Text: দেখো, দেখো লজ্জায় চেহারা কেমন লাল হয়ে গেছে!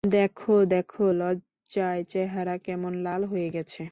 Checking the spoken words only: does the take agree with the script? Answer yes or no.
yes